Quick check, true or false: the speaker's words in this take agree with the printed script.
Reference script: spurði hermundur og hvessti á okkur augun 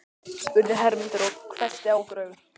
true